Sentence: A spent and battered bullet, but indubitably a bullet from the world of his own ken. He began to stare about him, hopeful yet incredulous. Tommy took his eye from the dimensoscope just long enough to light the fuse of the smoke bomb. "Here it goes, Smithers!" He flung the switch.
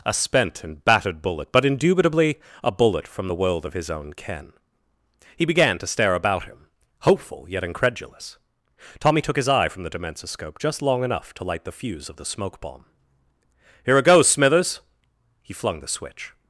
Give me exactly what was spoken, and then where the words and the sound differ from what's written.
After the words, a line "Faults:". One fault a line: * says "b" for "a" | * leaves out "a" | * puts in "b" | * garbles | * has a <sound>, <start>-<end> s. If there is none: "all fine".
A spent and battered bullet, but indubitably a bullet from the world of his own ken. He began to stare about him, hopeful yet incredulous. Tommy took his eye from the dimensoscope just long enough to light the fuse of the smoke bomb. "Here it goes, Smithers!" He flung the switch.
Faults:
all fine